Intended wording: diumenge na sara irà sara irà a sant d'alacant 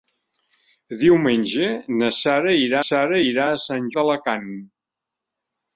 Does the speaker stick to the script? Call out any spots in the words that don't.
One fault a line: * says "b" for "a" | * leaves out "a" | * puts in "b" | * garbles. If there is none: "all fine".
all fine